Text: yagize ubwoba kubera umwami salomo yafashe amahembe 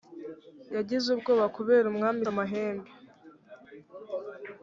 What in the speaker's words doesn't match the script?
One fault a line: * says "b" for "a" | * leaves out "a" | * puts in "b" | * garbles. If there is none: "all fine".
* leaves out "salomo yafashe"